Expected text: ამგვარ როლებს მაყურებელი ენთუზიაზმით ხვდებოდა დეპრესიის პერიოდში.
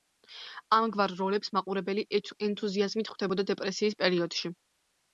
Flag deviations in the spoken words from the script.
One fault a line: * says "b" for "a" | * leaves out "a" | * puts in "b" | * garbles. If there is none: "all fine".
all fine